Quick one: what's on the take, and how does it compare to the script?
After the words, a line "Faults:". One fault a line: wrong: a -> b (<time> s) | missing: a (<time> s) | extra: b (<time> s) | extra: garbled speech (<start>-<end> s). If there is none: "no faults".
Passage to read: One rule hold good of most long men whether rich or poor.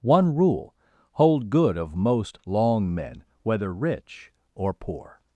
One rule hold good of most long men whether rich or poor.
Faults:
no faults